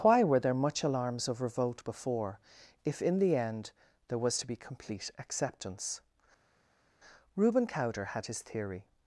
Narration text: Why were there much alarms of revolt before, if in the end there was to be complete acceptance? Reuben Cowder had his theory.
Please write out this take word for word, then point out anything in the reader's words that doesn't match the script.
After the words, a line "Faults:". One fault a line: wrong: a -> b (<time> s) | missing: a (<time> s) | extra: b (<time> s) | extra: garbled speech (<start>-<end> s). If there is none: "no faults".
Why were there much alarms of revolt before, if in the end there was to be complete acceptance? Reuben Cowder had his theory.
Faults:
no faults